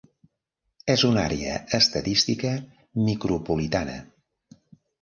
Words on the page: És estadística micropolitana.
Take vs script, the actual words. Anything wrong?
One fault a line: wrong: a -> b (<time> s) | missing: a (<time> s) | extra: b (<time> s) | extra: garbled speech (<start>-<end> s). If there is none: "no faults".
extra: una àrea (1.1 s)